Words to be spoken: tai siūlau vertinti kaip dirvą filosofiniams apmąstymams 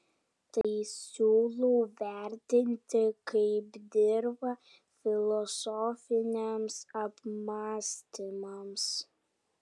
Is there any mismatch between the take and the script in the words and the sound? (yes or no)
yes